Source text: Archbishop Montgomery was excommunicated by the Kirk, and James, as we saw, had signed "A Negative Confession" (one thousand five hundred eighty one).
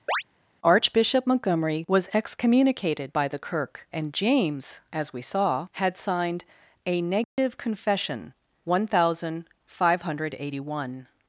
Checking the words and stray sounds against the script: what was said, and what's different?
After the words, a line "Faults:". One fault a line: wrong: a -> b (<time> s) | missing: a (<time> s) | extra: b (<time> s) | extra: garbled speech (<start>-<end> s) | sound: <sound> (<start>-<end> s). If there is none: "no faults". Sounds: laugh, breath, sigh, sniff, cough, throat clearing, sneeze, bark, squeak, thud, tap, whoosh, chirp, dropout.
Archbishop Montgomery was excommunicated by the Kirk, and James, as we saw, had signed "A Negative Confession" (one thousand five hundred eighty one).
Faults:
sound: chirp (0.1-0.2 s)
sound: dropout (7.2-7.4 s)